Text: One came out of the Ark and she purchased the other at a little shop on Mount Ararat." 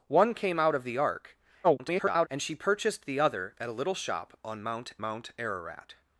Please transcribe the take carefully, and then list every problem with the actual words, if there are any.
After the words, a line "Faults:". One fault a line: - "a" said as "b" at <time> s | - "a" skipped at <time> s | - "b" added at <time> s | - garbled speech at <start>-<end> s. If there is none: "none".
One came out of the Ark [garbled] and she purchased the other at a little shop on Mount Mount Ararat."
Faults:
- garbled speech at 1.6-2.3 s
- "Mount" added at 5.0 s